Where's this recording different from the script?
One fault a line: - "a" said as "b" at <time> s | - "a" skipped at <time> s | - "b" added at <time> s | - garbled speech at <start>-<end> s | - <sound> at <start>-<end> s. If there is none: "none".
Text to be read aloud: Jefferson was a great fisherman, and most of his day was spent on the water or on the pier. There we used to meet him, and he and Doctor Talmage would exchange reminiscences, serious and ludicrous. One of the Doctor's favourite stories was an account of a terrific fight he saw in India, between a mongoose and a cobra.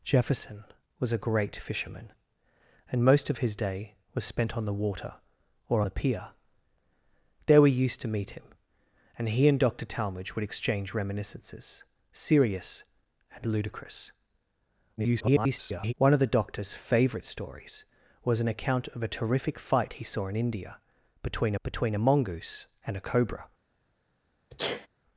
- "on" skipped at 5.8 s
- garbled speech at 15.0-15.9 s
- "between" added at 21.6 s
- sneeze at 24.5-24.9 s